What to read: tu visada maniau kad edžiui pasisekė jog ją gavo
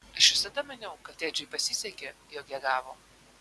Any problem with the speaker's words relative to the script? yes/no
yes